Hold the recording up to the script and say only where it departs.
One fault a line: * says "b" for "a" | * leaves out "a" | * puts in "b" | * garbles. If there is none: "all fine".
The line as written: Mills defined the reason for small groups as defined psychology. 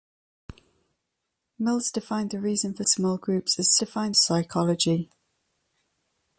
all fine